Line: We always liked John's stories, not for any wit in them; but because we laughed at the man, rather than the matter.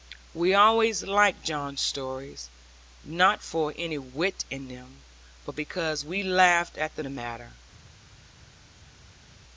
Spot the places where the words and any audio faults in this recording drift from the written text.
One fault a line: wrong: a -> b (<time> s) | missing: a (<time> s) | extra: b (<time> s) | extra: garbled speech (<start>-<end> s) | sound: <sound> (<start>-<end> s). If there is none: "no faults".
missing: man rather than (7.0 s)